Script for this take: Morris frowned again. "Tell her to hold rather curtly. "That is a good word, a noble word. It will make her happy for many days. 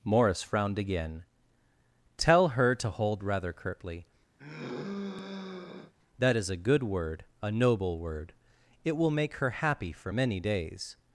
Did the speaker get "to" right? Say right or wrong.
right